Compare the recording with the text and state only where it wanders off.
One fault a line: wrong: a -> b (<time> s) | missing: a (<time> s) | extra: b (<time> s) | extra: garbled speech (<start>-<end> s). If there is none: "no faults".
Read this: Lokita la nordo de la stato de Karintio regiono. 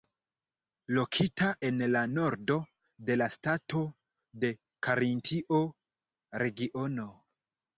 extra: en (1.7 s)